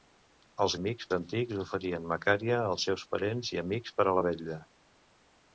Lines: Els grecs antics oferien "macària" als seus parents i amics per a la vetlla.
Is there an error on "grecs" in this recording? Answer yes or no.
yes